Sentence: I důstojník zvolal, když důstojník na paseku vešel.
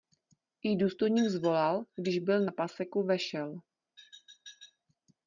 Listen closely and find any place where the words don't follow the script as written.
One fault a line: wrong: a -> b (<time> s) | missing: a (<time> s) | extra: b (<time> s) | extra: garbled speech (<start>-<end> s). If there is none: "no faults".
wrong: důstojník -> byl (2.2 s)